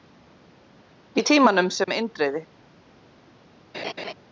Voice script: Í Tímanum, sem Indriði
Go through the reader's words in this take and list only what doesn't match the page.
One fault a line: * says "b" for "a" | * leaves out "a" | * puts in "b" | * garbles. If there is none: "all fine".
all fine